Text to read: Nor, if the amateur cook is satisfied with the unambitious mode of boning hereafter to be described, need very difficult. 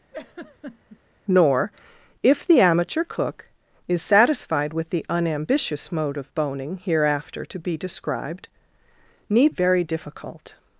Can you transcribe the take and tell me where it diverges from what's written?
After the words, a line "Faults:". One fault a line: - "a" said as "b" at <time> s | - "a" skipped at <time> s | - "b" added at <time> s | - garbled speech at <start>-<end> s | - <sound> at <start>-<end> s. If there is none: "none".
Nor, if the amateur cook is satisfied with the unambitious mode of boning hereafter to be described, need very difficult.
Faults:
- laugh at 0.1-1.0 s